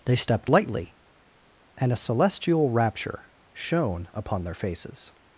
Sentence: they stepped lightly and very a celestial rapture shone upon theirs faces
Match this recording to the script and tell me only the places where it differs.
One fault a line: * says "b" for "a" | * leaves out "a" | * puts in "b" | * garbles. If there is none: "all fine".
* leaves out "very"
* says "their" for "theirs"